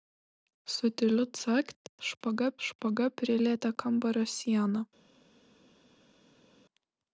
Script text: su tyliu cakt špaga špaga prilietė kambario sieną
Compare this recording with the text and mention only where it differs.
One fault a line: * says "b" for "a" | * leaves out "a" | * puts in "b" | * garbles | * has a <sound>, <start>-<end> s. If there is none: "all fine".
all fine